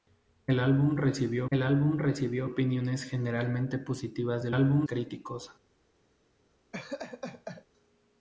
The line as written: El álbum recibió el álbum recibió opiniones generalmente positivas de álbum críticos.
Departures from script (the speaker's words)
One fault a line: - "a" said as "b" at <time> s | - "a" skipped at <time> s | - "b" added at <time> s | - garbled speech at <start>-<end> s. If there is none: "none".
none